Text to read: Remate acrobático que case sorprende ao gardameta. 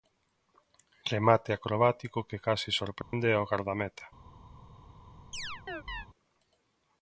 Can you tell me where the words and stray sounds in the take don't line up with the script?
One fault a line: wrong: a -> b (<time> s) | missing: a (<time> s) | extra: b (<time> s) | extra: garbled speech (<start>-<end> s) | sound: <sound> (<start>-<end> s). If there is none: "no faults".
sound: dropout (3.0-3.1 s)
sound: chirp (5.3-6.1 s)